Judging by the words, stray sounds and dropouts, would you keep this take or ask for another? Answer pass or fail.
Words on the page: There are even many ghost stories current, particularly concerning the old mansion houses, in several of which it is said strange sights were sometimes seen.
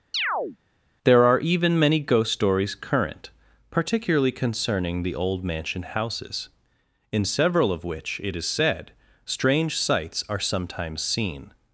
fail